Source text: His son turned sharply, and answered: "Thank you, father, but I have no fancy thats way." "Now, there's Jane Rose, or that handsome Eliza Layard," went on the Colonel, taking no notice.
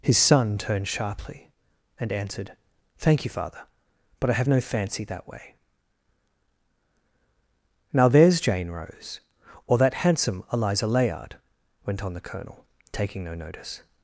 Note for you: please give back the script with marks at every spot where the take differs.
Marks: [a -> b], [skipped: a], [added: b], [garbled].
His son turned sharply, and answered: "Thank you, father, but I have no fancy [thats -> that] way." "Now, there's Jane Rose, or that handsome Eliza Layard," went on the Colonel, taking no notice.